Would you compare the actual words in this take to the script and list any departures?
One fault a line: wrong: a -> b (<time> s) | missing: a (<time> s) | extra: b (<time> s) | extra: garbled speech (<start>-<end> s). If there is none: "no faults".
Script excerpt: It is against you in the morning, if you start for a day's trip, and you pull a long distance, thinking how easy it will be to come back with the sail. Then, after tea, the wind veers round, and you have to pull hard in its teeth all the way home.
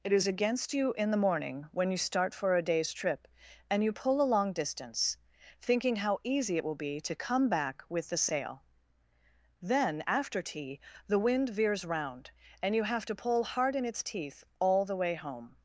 wrong: if -> when (1.7 s)